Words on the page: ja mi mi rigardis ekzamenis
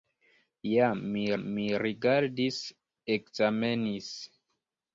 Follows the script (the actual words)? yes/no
yes